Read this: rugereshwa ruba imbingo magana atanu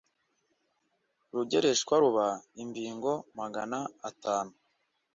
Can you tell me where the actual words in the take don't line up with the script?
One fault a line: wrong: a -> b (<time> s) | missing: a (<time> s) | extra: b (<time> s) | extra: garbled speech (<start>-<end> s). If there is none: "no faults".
no faults